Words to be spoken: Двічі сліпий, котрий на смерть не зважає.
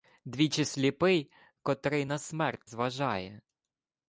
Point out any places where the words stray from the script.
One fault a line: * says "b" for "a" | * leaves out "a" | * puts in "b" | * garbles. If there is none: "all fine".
* leaves out "не"